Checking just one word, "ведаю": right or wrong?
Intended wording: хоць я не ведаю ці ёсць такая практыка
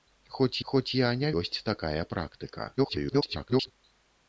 wrong